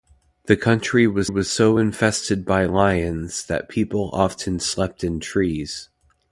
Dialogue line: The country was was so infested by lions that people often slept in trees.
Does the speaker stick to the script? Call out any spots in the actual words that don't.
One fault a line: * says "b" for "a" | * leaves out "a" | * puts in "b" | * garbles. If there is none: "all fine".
all fine